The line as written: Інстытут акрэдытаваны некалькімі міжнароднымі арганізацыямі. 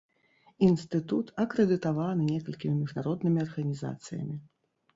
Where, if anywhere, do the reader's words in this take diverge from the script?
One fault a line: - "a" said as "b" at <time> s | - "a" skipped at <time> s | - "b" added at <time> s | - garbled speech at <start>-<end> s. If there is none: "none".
none